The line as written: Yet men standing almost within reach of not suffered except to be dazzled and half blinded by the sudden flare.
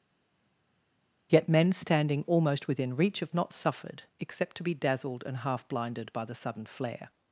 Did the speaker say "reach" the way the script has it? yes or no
yes